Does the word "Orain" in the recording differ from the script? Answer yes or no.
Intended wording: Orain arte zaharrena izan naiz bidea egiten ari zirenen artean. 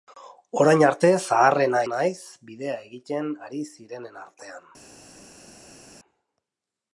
no